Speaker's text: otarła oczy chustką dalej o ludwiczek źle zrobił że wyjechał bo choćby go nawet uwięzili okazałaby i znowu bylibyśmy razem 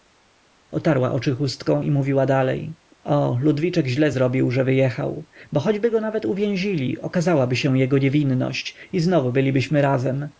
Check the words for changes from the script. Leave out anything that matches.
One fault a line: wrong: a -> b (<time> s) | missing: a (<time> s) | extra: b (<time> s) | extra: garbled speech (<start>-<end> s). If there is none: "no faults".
extra: i mówiła (1.8 s)
extra: się jego niewinność (7.6 s)